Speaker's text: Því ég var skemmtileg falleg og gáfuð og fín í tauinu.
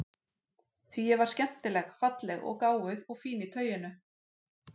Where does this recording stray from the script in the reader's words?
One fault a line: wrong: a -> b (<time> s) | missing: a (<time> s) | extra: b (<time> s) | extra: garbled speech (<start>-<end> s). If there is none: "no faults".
no faults